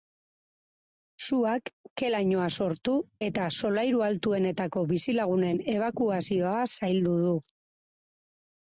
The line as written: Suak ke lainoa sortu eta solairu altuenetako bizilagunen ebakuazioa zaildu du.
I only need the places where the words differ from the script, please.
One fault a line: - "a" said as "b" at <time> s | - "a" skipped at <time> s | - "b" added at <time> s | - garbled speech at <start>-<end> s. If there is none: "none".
none